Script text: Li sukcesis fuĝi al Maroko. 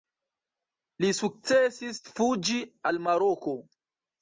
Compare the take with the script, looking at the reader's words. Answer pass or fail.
pass